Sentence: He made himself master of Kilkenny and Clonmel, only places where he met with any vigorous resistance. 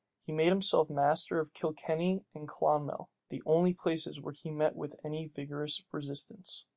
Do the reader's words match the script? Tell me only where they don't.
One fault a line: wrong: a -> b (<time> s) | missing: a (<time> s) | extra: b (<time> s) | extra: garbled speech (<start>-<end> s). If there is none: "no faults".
extra: the (3.3 s)